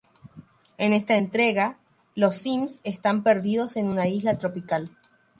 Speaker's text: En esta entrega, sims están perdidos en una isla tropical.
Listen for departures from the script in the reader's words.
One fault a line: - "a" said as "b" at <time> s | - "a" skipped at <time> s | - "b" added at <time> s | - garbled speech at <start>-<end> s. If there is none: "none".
- "los" added at 2.2 s